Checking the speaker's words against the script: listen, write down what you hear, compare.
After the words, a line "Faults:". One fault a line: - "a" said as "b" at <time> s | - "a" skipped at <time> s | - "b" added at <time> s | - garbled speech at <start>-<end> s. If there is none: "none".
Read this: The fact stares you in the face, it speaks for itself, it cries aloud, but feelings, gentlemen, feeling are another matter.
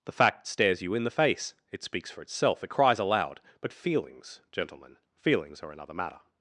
The fact stares you in the face, it speaks for itself, it cries aloud, but feelings, gentlemen, feelings are another matter.
Faults:
- "feeling" said as "feelings" at 5.2 s